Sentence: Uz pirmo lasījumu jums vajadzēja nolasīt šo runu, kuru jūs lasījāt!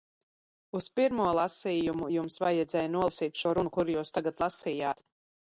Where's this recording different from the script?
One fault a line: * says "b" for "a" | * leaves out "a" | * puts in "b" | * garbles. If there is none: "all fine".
* puts in "tagad"